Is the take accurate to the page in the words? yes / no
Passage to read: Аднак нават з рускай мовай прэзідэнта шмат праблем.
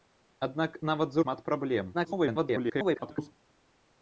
no